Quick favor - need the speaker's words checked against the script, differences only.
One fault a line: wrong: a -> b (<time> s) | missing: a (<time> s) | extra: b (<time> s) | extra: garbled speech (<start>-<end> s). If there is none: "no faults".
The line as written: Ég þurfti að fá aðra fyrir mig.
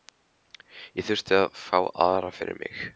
no faults